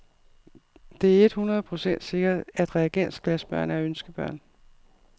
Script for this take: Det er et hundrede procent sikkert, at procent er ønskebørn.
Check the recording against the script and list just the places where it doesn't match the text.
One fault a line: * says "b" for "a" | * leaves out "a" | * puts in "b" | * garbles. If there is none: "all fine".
* says "reagensglasbørn" for "procent"